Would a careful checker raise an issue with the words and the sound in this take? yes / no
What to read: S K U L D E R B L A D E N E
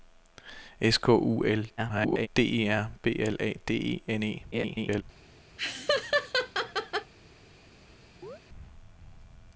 yes